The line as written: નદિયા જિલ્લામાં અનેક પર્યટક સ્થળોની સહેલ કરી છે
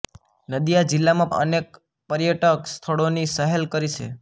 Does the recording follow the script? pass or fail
pass